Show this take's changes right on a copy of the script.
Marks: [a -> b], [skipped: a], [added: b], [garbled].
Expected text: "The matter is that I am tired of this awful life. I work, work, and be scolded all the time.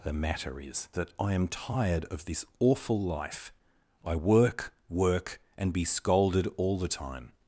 "The matter is that I am tired of this awful life. I work, work, and be scolded all the time.